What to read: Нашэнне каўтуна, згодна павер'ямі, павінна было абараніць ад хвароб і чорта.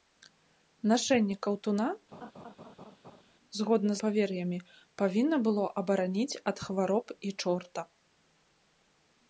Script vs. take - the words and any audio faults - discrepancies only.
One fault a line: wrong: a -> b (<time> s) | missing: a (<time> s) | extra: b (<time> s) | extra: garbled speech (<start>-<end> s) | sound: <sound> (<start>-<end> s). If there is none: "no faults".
sound: laugh (2.1-3.2 s)